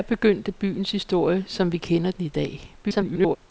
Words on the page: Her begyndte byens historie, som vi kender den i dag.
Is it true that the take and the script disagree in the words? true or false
true